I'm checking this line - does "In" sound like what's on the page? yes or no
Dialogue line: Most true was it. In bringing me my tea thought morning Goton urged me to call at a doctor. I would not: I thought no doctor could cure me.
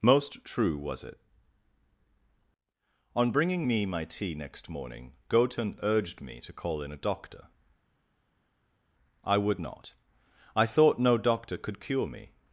no